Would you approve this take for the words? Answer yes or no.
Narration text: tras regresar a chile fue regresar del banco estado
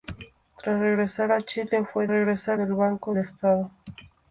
yes